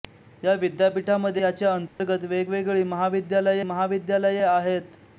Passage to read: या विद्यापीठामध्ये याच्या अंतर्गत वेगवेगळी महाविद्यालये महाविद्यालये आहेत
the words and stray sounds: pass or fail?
fail